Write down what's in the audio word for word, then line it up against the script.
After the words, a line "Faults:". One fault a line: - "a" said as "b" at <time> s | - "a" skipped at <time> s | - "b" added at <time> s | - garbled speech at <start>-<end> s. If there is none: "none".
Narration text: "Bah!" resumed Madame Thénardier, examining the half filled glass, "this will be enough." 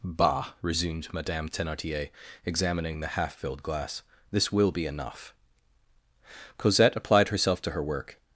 "Bah!" resumed Madame Thénardier, examining the half filled glass, "this will be enough." Cosette applied herself to her work
Faults:
- "Cosette applied herself to her work" added at 6.6 s